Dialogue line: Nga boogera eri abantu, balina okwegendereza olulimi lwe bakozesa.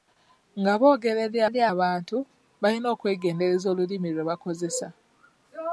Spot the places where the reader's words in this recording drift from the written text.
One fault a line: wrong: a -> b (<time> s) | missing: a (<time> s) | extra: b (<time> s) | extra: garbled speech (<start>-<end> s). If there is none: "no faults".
extra: eri (1.5 s)